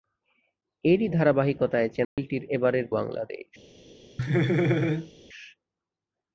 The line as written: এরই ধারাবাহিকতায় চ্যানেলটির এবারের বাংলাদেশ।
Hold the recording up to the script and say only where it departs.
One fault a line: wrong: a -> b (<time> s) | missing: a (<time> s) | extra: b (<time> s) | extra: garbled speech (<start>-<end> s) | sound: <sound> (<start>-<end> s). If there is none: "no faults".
sound: dropout (2.0-2.2 s)
sound: laugh (4.2-5.1 s)